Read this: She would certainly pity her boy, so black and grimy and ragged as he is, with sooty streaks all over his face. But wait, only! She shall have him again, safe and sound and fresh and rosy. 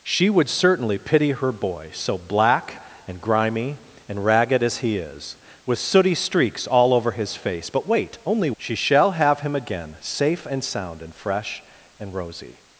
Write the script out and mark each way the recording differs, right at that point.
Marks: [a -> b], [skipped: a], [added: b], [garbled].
She would certainly pity her boy, so black and grimy and ragged as he is, with sooty streaks all over his face. But wait, only! She shall have him again, safe and sound and fresh and rosy.